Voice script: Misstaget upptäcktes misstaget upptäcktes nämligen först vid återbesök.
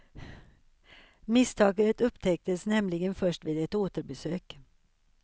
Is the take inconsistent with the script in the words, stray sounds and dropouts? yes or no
yes